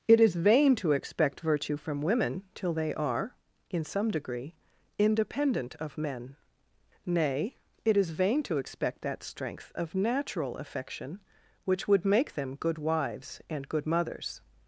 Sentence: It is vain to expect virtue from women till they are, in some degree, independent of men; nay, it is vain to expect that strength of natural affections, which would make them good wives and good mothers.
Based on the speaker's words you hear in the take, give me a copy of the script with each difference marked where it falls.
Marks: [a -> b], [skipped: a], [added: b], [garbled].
It is vain to expect virtue from women till they are, in some degree, independent of men; nay, it is vain to expect that strength of natural [affections, -> affection] which would make them good wives and good mothers.